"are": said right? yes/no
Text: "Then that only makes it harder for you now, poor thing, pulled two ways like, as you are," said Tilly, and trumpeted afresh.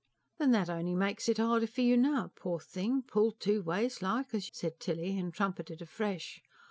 no